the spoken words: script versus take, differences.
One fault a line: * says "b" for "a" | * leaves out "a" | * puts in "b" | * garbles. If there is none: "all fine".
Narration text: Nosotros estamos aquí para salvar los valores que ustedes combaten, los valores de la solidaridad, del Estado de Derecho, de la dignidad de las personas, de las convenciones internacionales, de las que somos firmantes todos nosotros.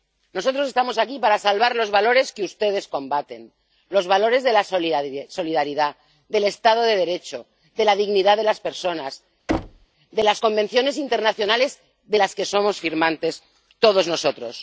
all fine